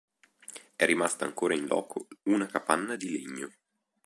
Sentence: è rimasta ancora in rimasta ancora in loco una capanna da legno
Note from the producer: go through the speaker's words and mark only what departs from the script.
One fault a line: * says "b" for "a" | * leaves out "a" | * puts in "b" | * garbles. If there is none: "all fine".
* leaves out "rimasta ancora in"
* says "di" for "da"